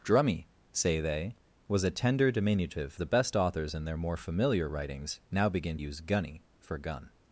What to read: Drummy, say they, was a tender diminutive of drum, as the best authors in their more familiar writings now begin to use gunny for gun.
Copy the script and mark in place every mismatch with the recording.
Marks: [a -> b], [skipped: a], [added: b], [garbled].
Drummy, say they, was a tender diminutive [skipped: of drum, as] the best authors in their more familiar writings now begin [skipped: to] use gunny for gun.